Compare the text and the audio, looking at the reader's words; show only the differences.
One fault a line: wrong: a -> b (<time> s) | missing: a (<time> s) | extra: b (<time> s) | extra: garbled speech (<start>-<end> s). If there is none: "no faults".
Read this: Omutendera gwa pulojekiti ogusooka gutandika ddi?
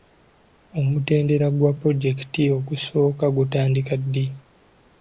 no faults